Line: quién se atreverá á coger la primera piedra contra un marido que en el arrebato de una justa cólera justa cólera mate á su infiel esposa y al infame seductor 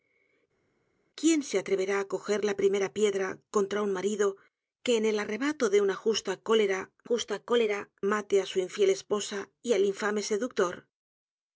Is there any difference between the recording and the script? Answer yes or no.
no